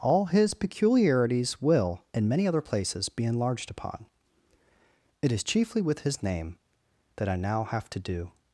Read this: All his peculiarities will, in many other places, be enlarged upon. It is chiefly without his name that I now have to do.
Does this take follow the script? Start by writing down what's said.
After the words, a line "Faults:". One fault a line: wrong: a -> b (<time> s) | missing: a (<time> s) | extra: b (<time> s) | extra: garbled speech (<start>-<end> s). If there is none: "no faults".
All his peculiarities will, in many other places, be enlarged upon. It is chiefly with his name that I now have to do.
Faults:
wrong: without -> with (5.8 s)